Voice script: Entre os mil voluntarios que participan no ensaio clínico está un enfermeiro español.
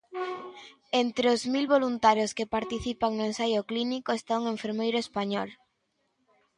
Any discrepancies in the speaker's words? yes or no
no